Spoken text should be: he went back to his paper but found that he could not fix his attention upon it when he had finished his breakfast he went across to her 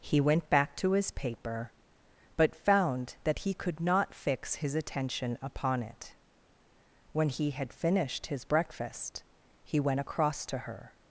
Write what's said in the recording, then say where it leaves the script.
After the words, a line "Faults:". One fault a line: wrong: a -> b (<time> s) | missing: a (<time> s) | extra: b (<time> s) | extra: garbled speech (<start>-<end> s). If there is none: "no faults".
he went back to his paper but found that he could not fix his attention upon it when he had finished his breakfast he went across to her
Faults:
no faults